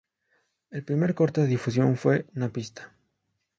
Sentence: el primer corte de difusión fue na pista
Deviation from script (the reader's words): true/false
false